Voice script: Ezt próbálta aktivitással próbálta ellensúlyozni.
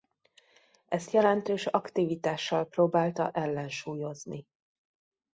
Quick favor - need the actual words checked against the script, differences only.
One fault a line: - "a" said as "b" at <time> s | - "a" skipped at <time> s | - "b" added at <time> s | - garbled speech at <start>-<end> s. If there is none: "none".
- "próbálta" said as "jelentős" at 1.1 s